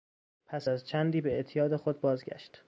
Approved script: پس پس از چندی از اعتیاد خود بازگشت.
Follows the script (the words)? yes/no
no